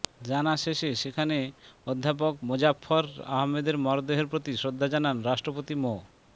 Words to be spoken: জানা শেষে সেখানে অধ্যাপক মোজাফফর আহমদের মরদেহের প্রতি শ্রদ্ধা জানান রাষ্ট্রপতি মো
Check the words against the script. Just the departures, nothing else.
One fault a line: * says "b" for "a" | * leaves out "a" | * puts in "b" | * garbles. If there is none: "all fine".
all fine